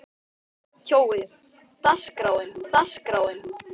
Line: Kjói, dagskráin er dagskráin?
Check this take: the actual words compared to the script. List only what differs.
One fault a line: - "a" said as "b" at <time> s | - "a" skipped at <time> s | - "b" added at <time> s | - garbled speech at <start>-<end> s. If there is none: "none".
none